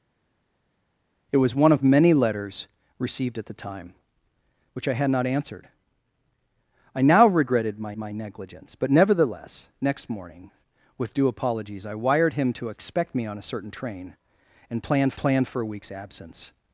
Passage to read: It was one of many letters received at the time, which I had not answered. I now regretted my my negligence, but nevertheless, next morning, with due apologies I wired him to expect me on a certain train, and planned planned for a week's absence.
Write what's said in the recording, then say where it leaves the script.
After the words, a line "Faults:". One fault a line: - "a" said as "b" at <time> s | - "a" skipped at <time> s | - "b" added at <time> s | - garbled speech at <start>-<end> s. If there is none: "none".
It was one of many letters received at the time, which I had not answered. I now regretted my my negligence, but nevertheless, next morning, with due apologies I wired him to expect me on a certain train, and planned planned for a week's absence.
Faults:
none